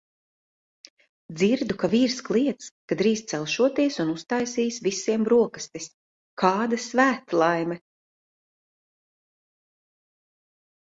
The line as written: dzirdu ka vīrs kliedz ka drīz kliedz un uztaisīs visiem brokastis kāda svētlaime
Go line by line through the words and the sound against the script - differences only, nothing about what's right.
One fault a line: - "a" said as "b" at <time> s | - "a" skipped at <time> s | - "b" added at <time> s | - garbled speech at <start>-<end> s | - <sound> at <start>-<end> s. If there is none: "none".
- "kliedz" said as "celšoties" at 3.3 s